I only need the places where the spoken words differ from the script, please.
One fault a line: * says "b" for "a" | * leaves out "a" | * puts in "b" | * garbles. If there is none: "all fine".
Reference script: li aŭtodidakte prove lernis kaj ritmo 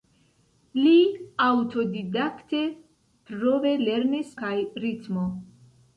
all fine